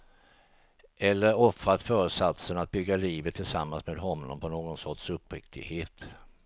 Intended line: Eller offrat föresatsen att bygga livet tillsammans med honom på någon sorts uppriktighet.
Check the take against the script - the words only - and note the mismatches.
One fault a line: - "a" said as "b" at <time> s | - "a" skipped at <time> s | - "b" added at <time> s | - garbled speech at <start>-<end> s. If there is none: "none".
none